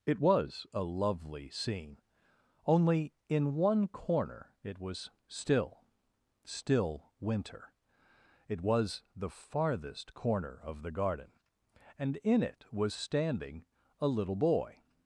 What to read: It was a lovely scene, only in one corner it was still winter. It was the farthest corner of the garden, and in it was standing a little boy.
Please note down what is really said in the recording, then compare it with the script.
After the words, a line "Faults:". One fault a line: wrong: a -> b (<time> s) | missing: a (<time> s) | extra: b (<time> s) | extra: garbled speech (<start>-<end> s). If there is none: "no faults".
It was a lovely scene, only in one corner it was still still winter. It was the farthest corner of the garden, and in it was standing a little boy.
Faults:
extra: still (6.4 s)